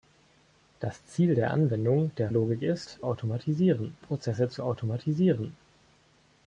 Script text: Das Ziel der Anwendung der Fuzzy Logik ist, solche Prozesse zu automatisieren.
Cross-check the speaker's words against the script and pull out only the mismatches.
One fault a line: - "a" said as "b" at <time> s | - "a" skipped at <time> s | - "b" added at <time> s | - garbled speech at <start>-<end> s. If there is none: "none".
- "Fuzzy" skipped at 2.3 s
- "solche" said as "automatisieren" at 3.0 s